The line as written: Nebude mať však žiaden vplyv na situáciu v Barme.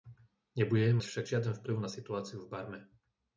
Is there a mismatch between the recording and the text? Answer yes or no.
yes